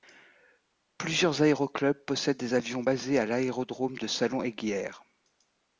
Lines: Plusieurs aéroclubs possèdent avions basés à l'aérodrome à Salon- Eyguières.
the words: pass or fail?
fail